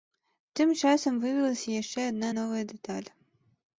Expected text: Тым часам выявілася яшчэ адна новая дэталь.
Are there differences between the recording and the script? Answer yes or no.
no